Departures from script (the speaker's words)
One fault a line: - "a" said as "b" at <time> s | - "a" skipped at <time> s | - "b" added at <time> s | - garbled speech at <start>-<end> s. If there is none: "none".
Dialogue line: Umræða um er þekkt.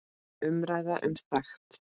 none